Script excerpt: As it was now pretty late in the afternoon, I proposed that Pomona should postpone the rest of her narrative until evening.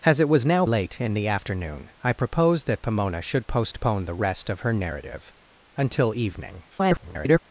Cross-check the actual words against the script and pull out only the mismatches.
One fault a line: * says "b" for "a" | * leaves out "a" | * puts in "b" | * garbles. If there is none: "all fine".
* leaves out "pretty"
* garbles